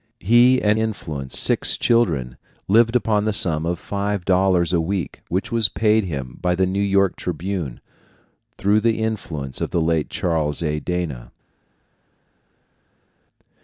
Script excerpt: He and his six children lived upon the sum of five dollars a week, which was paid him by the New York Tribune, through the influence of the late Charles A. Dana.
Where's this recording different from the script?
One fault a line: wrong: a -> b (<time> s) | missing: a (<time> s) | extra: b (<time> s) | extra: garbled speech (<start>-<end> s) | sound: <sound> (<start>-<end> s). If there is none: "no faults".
wrong: his -> influence (0.8 s)